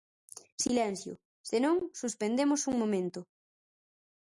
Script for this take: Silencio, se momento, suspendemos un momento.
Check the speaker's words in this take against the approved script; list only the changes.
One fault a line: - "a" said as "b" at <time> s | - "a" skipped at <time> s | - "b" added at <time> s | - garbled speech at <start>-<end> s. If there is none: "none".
- "momento" said as "non" at 1.6 s